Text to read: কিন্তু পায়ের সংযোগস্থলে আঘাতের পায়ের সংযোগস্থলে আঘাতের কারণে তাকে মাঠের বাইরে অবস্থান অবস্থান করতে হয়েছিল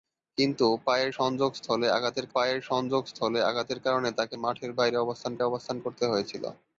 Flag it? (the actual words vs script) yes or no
no